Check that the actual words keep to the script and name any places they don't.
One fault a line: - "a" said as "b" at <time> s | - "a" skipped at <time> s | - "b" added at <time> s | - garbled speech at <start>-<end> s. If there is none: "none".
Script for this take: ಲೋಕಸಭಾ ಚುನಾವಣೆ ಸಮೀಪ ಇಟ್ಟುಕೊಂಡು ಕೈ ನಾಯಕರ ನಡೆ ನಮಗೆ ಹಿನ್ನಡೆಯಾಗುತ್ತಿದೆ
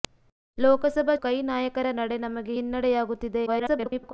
- "ಚುನಾವಣೆ ಸಮೀಪ ಇಟ್ಟುಕೊಂಡು" skipped at 1.1 s
- garbled speech at 3.5-4.1 s